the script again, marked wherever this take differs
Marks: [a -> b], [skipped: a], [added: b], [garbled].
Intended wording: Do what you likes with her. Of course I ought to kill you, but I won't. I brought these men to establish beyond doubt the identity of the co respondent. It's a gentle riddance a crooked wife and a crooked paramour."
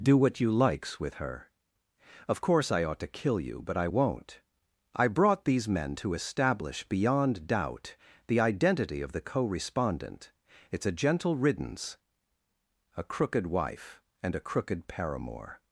Do what you likes with her. Of course I ought to kill you, but I won't. I brought these men to establish beyond doubt the identity of the co respondent. It's a gentle riddance a crooked wife and a crooked paramour."